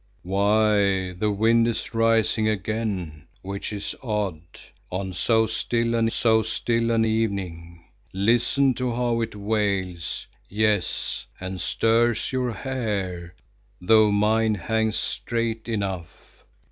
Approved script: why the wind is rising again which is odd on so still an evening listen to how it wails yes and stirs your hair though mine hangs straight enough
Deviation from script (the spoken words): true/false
true